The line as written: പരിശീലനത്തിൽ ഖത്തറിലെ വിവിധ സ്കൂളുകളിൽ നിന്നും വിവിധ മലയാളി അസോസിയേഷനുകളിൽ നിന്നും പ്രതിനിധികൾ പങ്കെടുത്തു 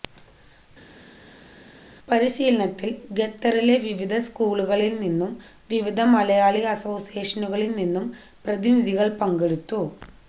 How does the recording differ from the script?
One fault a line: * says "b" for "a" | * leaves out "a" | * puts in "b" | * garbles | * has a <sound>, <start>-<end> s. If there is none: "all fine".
all fine